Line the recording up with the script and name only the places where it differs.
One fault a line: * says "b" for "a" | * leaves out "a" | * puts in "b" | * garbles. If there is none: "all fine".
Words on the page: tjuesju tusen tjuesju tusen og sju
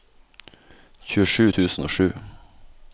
* leaves out "tjuesju tusen"